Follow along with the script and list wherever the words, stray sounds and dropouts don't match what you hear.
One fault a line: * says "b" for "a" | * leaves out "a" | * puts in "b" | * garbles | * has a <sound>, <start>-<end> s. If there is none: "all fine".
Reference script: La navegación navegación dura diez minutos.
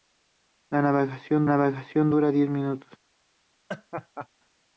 * has a laugh, 3.7-4.3 s